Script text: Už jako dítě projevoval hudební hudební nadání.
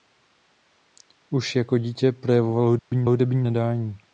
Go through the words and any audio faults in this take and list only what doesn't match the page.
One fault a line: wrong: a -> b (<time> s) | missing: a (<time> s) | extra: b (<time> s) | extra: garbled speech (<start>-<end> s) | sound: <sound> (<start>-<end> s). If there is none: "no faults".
sound: dropout (2.8-2.9 s)